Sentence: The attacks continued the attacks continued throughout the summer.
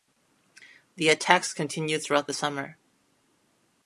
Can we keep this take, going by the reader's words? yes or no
no